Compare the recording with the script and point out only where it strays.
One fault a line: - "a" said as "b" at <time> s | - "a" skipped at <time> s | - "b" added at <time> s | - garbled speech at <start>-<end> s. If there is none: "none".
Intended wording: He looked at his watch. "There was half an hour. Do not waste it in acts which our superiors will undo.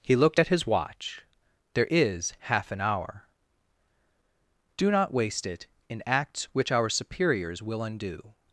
- "was" said as "is" at 1.9 s